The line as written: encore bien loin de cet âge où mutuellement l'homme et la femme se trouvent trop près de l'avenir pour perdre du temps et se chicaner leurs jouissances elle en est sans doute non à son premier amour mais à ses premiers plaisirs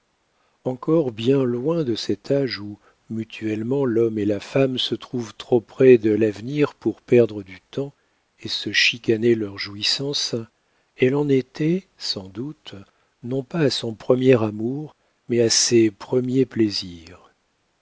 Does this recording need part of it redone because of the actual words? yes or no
yes